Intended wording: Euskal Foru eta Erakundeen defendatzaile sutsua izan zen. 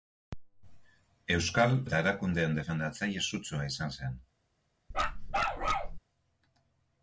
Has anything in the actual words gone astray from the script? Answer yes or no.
yes